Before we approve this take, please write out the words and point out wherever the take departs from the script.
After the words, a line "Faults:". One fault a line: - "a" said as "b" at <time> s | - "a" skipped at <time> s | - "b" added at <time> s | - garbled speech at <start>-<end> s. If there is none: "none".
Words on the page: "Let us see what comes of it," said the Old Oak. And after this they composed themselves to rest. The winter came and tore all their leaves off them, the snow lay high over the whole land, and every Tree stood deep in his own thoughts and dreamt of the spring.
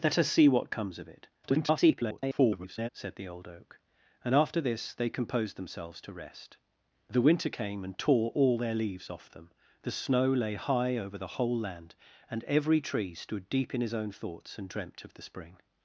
"Let us see what comes of it," [garbled] said the Old Oak. And after this they composed themselves to rest. The winter came and tore all their leaves off them, the snow lay high over the whole land, and every Tree stood deep in his own thoughts and dreamt of the spring.
Faults:
- garbled speech at 1.4-2.9 s